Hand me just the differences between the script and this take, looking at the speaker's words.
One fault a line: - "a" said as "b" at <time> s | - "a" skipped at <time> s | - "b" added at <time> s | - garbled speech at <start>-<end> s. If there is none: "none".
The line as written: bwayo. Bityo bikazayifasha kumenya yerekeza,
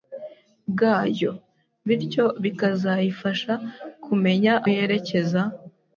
none